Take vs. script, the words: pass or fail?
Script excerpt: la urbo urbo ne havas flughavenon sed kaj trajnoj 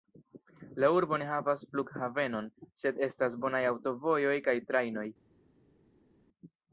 fail